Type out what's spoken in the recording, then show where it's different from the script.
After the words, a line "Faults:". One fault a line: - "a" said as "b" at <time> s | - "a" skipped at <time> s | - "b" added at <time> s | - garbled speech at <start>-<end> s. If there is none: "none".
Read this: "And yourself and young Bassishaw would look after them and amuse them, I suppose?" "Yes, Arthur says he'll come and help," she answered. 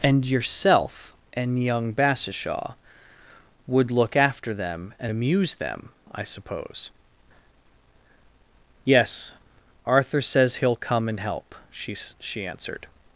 "And yourself and young Bassishaw would look after them and amuse them, I suppose?" "Yes, Arthur says he'll come and help," she she answered.
Faults:
- "she" added at 12.2 s